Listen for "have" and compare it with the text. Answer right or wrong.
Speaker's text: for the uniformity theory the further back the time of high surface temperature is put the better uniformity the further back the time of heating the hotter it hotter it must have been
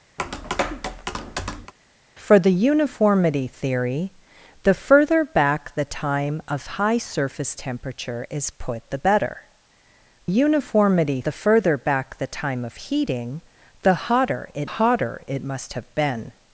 right